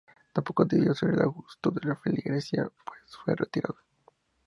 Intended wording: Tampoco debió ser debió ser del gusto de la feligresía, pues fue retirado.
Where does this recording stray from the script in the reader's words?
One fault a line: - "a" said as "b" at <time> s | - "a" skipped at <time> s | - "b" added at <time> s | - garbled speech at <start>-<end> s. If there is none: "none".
- "debió ser" skipped at 1.1 s